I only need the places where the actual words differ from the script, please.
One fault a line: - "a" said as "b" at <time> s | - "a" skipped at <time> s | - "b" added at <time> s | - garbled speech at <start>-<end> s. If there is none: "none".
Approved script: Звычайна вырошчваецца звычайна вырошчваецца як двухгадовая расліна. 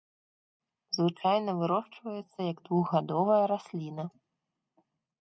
- "звычайна вырошчваецца" skipped at 2.4 s